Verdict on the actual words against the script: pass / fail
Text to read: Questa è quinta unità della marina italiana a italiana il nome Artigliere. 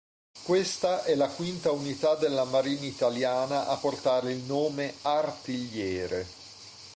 fail